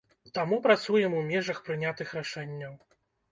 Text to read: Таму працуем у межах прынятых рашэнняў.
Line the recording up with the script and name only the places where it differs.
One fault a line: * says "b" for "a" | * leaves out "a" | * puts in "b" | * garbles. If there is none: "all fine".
all fine